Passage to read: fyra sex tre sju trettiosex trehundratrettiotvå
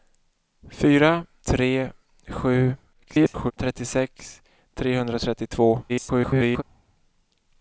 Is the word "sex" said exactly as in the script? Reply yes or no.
no